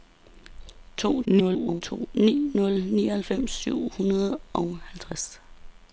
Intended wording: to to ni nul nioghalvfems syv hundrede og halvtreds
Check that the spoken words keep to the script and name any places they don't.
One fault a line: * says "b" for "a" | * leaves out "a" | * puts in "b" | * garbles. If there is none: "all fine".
* garbles